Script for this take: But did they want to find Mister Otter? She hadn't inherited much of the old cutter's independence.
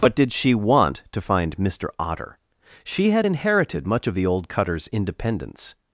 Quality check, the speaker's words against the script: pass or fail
fail